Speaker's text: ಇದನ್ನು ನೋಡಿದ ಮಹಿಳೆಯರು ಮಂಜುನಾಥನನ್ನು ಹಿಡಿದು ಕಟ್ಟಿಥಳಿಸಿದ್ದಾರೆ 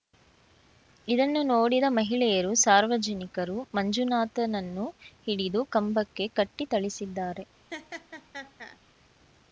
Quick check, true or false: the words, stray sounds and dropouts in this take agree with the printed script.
false